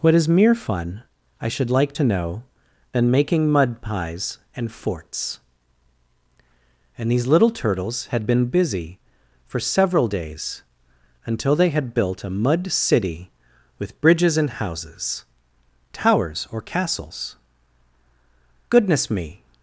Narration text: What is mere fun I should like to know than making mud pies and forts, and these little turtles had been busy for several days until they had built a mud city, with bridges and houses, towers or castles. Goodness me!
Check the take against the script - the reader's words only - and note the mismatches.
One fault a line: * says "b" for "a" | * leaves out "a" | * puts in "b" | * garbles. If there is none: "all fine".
all fine